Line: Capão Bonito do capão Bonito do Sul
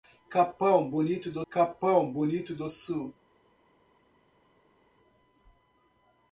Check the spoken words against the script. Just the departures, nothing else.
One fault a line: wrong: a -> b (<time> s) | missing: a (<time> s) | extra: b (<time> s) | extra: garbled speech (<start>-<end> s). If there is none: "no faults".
no faults